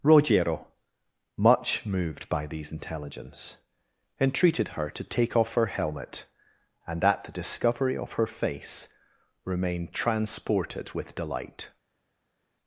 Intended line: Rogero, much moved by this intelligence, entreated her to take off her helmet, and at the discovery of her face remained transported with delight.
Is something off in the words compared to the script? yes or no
yes